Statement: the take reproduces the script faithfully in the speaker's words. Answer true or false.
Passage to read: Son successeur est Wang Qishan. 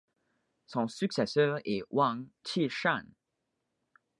true